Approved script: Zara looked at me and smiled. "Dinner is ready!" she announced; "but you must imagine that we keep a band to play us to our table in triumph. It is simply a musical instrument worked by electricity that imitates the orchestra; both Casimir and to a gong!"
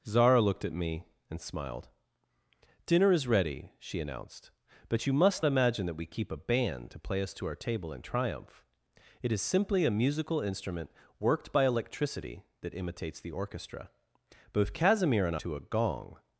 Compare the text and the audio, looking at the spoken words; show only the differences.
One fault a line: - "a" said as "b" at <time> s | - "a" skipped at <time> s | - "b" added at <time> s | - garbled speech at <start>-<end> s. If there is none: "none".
none